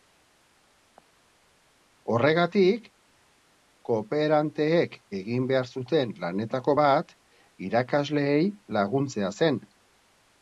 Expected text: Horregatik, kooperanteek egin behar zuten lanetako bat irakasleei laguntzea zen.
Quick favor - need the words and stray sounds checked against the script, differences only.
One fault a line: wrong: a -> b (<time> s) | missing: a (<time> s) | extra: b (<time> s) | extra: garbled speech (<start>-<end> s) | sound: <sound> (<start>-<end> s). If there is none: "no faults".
no faults